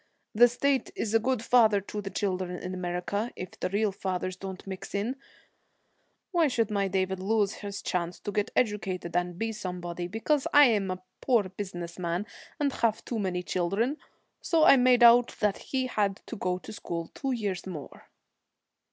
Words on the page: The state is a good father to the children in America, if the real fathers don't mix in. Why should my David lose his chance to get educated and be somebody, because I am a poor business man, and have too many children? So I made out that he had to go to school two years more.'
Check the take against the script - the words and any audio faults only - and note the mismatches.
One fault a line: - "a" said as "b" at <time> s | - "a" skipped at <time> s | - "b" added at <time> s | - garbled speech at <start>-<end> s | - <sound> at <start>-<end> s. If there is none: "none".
none